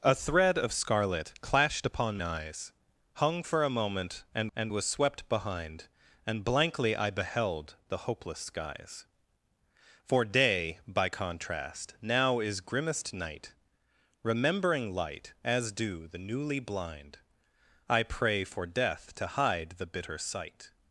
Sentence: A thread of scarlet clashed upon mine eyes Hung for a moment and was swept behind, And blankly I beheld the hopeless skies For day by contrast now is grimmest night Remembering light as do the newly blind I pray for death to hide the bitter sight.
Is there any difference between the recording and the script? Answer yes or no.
yes